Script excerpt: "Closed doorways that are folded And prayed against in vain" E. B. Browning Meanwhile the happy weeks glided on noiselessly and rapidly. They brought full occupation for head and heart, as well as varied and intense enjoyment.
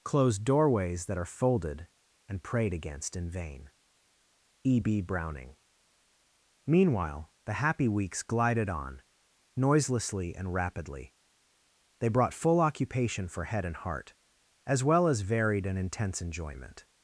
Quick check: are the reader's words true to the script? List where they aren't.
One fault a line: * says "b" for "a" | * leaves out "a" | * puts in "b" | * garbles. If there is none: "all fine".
all fine